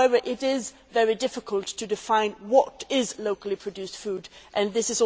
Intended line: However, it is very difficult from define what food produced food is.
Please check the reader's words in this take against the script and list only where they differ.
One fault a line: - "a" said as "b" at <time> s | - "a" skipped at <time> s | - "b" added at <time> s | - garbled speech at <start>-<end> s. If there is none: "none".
- "from" said as "to" at 1.6 s
- "food" said as "locally" at 3.2 s